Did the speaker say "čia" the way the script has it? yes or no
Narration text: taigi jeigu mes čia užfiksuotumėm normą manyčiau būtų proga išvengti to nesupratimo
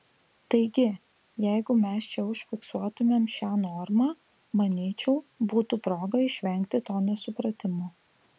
yes